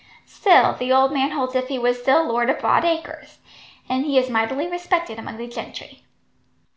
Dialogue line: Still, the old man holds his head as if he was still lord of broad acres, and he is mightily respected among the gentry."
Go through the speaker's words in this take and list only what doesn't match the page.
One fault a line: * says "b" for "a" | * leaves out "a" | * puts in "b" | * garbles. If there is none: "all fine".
* leaves out "his head as"